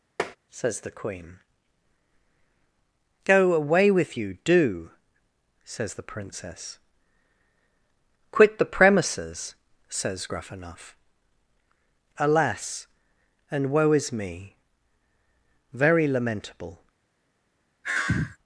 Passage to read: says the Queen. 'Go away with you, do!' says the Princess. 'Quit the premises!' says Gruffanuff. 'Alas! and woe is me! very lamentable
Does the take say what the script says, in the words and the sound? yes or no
no